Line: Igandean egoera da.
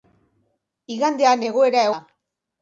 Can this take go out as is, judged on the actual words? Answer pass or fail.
pass